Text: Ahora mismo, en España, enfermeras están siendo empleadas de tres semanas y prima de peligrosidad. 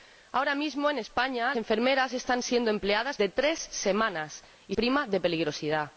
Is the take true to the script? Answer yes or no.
yes